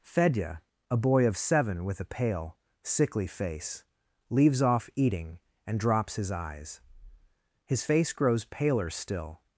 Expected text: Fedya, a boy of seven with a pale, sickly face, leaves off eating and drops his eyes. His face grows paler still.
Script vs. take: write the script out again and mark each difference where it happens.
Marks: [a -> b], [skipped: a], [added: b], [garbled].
Fedya, a boy of seven with a pale, sickly face, leaves off eating and drops his eyes. His face grows paler still.